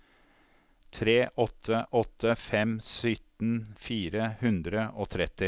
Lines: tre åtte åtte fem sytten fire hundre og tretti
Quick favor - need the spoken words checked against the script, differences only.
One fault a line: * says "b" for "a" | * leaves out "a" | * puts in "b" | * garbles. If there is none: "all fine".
all fine